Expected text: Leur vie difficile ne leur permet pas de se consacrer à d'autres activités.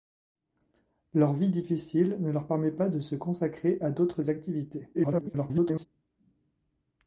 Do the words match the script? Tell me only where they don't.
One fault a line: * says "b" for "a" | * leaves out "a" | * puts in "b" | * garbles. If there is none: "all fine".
* garbles